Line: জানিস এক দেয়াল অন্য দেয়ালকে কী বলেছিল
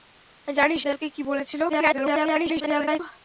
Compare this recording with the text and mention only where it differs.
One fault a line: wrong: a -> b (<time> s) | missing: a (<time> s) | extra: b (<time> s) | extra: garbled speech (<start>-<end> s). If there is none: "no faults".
missing: এক দেয়াল অন্য (0.8 s)
extra: garbled speech (1.7-3.0 s)